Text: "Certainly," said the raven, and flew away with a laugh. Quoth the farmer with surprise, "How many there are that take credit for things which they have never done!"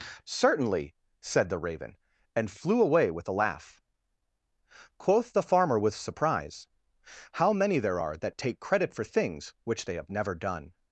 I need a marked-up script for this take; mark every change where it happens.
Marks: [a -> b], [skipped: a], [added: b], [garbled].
"Certainly," said the raven, and flew away with a laugh. Quoth the farmer with surprise, "How many there are that take credit for things which they have never done!"